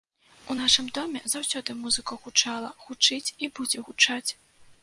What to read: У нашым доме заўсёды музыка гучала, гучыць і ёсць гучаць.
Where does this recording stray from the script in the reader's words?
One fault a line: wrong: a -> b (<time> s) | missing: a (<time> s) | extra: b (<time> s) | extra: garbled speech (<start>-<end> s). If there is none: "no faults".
wrong: ёсць -> будзе (3.6 s)